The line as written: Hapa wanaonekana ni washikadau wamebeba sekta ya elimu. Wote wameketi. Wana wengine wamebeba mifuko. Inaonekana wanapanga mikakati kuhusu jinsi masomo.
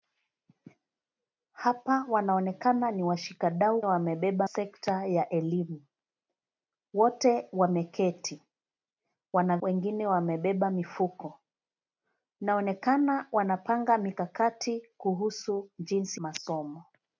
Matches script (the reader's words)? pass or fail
pass